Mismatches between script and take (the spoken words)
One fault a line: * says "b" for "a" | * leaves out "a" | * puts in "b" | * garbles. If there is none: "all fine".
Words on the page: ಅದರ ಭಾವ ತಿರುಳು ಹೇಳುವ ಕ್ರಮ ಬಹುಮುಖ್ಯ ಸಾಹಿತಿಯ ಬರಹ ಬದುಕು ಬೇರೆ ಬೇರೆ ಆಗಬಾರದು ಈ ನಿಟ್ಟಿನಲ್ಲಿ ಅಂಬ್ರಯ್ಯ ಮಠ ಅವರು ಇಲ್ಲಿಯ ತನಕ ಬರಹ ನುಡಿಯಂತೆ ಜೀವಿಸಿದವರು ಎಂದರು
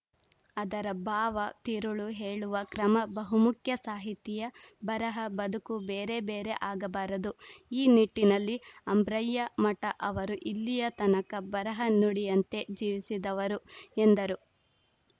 all fine